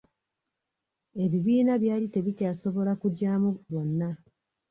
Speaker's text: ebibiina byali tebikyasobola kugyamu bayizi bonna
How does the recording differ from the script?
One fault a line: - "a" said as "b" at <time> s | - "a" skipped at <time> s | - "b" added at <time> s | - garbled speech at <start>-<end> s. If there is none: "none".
- "bayizi" skipped at 3.5 s